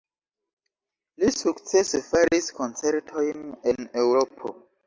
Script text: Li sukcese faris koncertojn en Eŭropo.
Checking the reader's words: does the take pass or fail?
pass